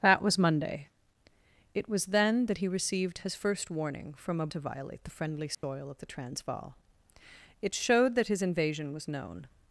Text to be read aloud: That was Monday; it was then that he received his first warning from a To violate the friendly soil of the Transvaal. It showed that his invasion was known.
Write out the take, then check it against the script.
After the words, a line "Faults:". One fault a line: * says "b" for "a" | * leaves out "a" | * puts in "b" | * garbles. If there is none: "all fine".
That was Monday; it was then that he received his first warning from a To violate the friendly soil of the Transvaal. It showed that his invasion was known.
Faults:
all fine